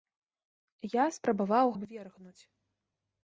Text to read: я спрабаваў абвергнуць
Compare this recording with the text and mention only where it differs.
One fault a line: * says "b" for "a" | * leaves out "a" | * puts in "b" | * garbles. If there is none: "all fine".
all fine